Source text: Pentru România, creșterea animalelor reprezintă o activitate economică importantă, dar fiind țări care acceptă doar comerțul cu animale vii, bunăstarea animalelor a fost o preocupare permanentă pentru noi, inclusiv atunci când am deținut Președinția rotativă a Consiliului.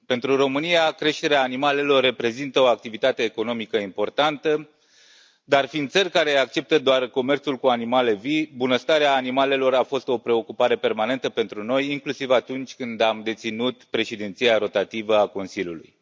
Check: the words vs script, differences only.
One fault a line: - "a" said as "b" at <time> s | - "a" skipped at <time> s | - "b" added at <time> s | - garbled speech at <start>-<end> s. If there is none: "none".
none